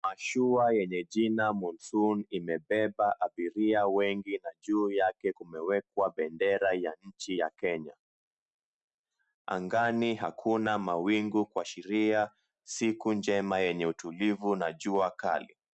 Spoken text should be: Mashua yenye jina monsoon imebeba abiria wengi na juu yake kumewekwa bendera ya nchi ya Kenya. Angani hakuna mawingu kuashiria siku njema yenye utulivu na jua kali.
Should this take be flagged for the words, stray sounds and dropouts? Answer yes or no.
no